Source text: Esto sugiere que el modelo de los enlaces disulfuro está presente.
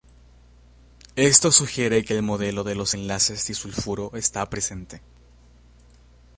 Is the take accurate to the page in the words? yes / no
yes